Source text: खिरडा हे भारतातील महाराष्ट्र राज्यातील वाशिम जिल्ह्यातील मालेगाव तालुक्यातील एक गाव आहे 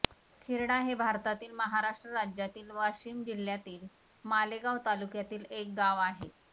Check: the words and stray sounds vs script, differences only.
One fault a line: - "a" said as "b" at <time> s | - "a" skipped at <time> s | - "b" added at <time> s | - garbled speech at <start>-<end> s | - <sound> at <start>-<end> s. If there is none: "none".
none